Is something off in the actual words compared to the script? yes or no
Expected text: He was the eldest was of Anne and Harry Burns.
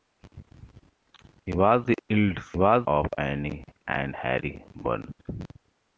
no